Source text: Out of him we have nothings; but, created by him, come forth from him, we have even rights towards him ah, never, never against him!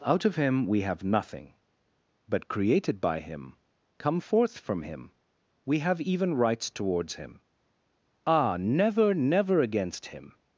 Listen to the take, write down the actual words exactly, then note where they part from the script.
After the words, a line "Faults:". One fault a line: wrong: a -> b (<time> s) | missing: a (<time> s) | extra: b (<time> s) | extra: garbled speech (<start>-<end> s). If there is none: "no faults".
Out of him we have nothing; but, created by him, come forth from him, we have even rights towards him ah, never, never against him!
Faults:
wrong: nothings -> nothing (1.0 s)